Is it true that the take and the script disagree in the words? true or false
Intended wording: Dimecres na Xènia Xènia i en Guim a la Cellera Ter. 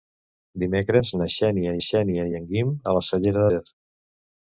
false